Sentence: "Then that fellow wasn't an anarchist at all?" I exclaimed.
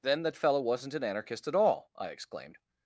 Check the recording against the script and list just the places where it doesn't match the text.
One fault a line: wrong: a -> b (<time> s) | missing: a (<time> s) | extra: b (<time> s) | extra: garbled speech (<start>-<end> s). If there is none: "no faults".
no faults